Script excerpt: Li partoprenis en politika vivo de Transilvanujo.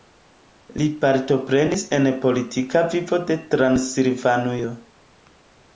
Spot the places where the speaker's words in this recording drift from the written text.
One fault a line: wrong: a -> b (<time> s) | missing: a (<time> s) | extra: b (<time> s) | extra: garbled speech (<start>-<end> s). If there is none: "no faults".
no faults